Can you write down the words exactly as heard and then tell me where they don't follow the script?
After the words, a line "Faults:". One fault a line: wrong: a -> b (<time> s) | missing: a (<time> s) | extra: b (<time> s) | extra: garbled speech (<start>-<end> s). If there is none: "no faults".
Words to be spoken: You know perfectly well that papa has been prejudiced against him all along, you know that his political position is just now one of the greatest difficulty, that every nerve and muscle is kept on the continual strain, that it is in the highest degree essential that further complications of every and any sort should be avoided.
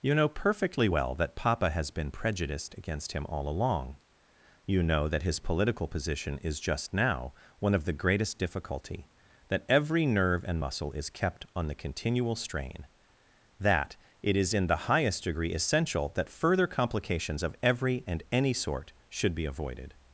You know perfectly well that papa has been prejudiced against him all along, you know that his political position is just now one of the greatest difficulty, that every nerve and muscle is kept on the continual strain, that it is in the highest degree essential that further complications of every and any sort should be avoided.
Faults:
no faults